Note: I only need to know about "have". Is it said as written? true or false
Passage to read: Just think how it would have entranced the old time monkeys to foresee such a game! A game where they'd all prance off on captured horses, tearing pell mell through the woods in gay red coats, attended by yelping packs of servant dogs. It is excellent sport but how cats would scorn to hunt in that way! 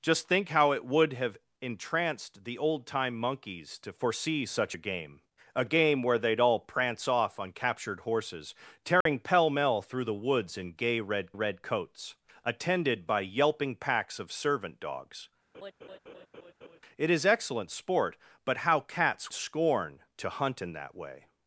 true